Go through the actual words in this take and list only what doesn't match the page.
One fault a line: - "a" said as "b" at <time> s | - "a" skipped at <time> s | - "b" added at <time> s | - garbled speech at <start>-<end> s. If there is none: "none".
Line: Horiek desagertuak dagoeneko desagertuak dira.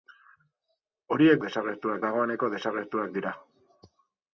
none